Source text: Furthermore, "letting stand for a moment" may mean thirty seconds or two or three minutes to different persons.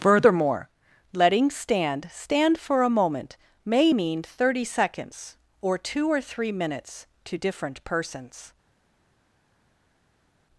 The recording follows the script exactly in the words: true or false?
false